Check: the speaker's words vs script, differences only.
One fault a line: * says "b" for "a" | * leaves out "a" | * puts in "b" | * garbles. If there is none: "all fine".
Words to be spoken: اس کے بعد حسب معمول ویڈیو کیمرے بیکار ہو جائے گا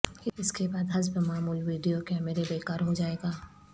all fine